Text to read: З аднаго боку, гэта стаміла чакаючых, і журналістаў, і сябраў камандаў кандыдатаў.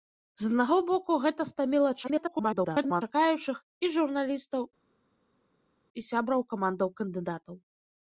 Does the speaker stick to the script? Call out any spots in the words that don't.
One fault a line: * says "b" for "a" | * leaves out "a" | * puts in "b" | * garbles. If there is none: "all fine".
* garbles